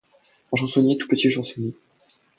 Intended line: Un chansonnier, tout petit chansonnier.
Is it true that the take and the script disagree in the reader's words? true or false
false